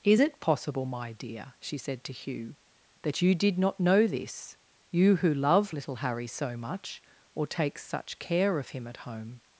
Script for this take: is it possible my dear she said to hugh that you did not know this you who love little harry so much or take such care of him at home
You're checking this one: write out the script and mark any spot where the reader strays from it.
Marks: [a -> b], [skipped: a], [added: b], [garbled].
is it possible my dear she said to hugh that you did not know this you who love little harry so much or take such care of him at home